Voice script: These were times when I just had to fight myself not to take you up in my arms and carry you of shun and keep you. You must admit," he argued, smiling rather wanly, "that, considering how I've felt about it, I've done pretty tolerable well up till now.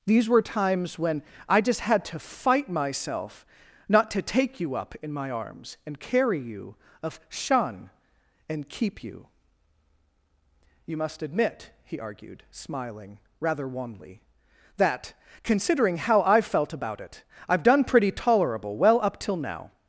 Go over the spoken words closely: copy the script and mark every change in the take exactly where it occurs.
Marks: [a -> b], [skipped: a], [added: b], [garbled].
These were times when I just had to fight myself not to take you up in my arms and carry you of shun and keep you. You must admit," he argued, smiling rather wanly, "that, considering how I've felt about it, I've done pretty tolerable well up till now.